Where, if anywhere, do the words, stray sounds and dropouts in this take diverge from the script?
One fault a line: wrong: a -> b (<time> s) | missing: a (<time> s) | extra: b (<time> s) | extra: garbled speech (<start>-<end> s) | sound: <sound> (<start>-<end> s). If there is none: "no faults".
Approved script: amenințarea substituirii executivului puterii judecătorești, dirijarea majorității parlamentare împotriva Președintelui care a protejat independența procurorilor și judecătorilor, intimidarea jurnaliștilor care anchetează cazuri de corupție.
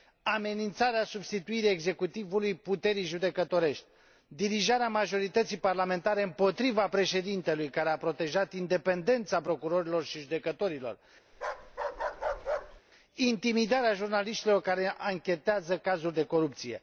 sound: bark (11.3-12.8 s)